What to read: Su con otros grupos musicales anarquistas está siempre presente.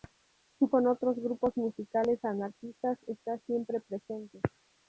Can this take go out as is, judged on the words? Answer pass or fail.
pass